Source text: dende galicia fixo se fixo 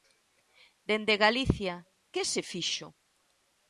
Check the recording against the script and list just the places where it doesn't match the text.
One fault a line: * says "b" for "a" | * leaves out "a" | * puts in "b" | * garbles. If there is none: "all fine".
* says "que" for "fixo"